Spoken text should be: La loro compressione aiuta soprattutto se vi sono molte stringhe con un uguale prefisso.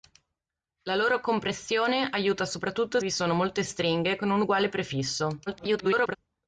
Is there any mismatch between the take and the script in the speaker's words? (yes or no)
yes